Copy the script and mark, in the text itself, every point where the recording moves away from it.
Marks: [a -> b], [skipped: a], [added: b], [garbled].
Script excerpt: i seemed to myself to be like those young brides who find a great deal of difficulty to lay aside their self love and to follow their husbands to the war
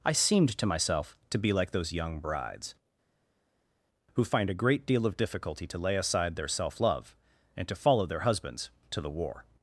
i seemed to myself to be like those young brides who find a great deal of difficulty to lay aside their self love and to follow their husbands to the war